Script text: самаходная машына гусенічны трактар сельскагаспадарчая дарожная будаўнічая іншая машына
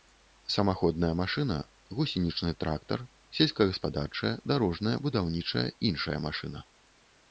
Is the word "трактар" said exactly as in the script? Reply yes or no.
yes